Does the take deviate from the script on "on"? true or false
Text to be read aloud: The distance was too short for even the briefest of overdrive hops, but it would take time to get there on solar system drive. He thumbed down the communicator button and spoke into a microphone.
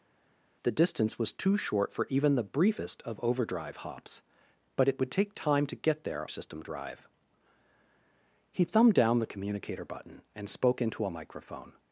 true